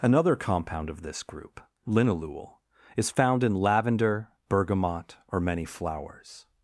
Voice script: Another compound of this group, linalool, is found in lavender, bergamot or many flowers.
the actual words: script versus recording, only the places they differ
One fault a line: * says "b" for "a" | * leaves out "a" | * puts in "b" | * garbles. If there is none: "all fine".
all fine